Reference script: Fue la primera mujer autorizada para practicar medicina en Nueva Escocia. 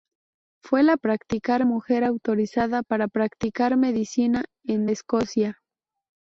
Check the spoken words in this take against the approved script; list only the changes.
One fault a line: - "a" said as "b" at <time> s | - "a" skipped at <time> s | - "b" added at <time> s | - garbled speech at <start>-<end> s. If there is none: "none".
- "primera" said as "practicar" at 1.0 s
- "Nueva" skipped at 4.9 s